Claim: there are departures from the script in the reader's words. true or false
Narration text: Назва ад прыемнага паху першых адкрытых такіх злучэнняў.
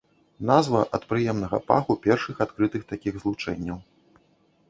false